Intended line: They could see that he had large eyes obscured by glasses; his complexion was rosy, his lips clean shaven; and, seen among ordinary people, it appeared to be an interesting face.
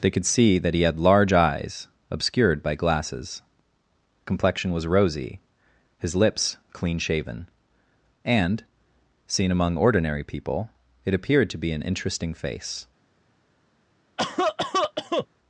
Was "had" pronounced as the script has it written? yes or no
yes